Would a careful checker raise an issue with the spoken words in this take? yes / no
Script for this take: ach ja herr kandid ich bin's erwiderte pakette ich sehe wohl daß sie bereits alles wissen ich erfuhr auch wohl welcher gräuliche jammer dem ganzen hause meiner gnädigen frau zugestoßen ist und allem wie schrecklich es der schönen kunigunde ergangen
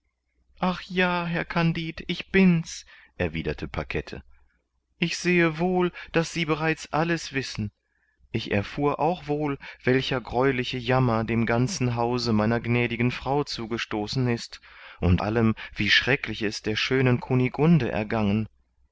no